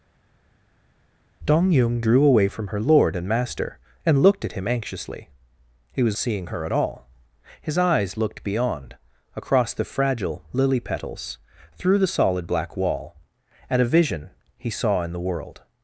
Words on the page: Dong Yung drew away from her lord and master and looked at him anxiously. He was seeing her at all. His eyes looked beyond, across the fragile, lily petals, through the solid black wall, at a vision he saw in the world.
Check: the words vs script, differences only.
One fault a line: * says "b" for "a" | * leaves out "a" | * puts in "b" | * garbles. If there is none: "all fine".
all fine